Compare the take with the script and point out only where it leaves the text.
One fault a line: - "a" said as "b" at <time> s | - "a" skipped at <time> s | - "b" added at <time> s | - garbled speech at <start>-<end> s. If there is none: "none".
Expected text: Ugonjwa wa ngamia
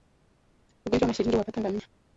- "mashilingi huwapata" added at 1.1 s